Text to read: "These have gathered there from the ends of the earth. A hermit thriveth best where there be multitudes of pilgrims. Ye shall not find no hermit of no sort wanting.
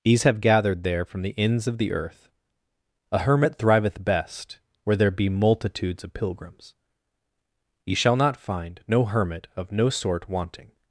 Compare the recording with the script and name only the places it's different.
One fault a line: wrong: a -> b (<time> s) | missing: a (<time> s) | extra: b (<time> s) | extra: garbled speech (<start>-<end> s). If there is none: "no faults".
no faults